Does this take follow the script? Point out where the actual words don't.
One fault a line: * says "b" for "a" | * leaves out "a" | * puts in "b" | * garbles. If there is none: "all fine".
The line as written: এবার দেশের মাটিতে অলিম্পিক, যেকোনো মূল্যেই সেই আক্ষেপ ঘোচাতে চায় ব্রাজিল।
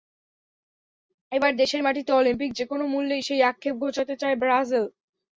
all fine